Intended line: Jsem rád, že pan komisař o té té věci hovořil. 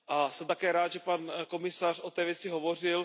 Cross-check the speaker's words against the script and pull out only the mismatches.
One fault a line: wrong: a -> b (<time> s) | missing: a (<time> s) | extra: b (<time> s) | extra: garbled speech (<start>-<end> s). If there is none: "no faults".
extra: také (0.5 s)
missing: té (2.2 s)